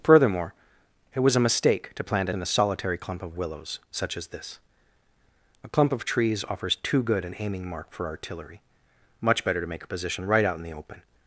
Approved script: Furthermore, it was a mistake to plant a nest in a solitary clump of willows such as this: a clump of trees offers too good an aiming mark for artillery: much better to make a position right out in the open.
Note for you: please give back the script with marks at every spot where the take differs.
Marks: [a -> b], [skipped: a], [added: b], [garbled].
Furthermore, it was a mistake to plant a [skipped: nest] in a solitary clump of willows such as this: a clump of trees offers too good an aiming mark for artillery: much better to make a position right out in the open.